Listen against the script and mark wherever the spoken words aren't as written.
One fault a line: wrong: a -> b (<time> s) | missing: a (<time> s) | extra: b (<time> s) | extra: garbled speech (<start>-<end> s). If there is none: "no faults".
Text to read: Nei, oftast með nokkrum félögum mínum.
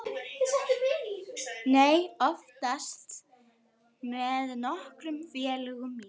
no faults